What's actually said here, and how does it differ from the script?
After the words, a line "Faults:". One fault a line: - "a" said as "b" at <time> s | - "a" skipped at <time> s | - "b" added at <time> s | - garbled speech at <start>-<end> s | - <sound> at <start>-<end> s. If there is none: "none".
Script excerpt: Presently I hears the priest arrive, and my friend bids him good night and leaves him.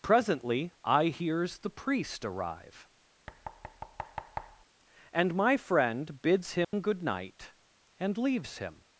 Presently I hears the priest arrive, and my friend bids him good night and leaves him.
Faults:
- thud at 3.3-4.7 s
- dropout at 6.6-6.7 s